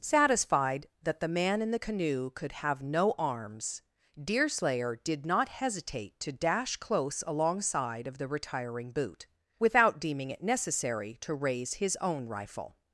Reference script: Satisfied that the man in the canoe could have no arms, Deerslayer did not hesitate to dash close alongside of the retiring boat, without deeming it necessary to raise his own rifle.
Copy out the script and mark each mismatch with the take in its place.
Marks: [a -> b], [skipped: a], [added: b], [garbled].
Satisfied that the man in the canoe could have no arms, Deerslayer did not hesitate to dash close alongside of the retiring [boat, -> boot] without deeming it necessary to raise his own rifle.